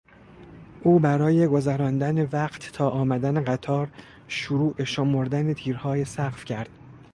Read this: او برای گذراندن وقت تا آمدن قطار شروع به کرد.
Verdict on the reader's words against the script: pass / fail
fail